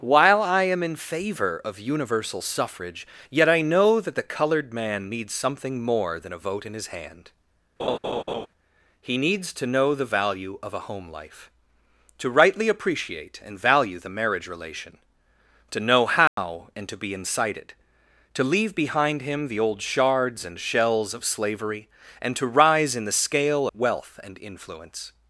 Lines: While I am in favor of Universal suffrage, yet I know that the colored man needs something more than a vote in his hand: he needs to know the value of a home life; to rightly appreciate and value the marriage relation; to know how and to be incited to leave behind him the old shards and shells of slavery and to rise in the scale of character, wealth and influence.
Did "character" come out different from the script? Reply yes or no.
yes